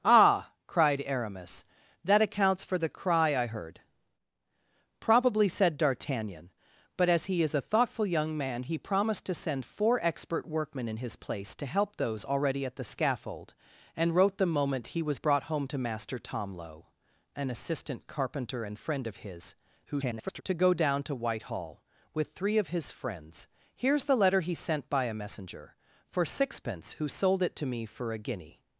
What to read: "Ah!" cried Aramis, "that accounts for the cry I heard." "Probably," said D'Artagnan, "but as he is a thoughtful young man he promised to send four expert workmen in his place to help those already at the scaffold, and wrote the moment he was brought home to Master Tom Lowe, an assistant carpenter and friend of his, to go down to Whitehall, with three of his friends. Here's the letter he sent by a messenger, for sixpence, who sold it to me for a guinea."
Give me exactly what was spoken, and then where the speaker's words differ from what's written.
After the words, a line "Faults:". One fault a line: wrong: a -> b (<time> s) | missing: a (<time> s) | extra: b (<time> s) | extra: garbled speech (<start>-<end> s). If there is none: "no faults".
"Ah!" cried Aramis, "that accounts for the cry I heard." "Probably," said D'Artagnan, "but as he is a thoughtful young man he promised to send four expert workmen in his place to help those already at the scaffold, and wrote the moment he was brought home to Master Tom Lowe, an assistant carpenter and friend of his, [garbled] to go down to Whitehall, with three of his friends. Here's the letter he sent by a messenger, for sixpence, who sold it to me for a guinea."
Faults:
extra: garbled speech (19.9-20.4 s)